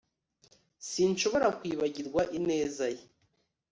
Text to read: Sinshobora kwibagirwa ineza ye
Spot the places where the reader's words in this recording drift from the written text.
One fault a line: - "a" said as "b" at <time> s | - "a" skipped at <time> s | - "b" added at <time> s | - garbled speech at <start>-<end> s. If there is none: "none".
none